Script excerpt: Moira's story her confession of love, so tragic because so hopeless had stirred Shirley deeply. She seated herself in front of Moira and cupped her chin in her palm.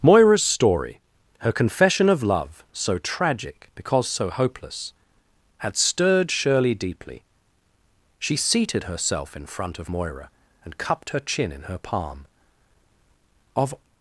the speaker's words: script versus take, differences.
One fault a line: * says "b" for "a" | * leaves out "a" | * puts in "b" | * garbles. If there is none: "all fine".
* puts in "Of"